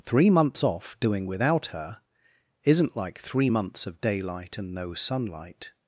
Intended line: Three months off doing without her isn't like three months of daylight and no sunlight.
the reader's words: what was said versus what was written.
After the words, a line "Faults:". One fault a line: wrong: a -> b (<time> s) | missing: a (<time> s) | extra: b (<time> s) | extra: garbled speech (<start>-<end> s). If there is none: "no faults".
Three months off doing without her isn't like three months of daylight and no sunlight.
Faults:
no faults